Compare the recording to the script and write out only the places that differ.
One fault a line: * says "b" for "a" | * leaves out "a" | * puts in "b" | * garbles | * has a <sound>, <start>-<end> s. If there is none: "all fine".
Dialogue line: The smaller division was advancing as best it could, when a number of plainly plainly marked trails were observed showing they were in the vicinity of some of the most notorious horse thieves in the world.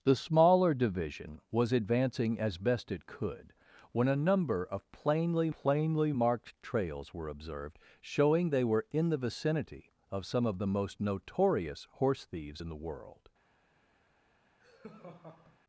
* has a laugh, 14.6-15.6 s